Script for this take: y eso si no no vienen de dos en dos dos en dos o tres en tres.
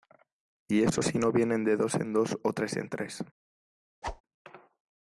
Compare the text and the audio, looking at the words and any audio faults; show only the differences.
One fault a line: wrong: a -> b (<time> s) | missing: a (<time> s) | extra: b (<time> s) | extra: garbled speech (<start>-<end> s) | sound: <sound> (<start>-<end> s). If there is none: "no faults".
missing: no (1.3 s)
missing: dos en dos (2.4 s)
sound: whoosh (4.0-4.2 s)